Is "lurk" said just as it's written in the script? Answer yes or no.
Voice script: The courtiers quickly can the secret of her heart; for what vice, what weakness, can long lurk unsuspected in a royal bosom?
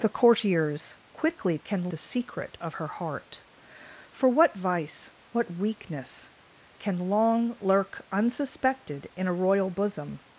yes